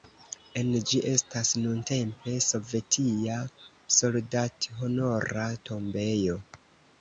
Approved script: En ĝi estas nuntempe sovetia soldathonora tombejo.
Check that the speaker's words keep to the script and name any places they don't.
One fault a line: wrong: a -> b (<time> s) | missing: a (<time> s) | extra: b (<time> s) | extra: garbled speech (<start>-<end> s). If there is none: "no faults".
no faults